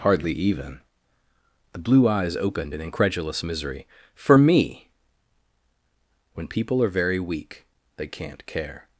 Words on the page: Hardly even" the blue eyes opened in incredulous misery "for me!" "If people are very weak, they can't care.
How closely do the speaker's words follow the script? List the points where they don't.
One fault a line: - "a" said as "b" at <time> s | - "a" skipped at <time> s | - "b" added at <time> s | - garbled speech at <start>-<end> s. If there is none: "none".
- "If" said as "When" at 6.3 s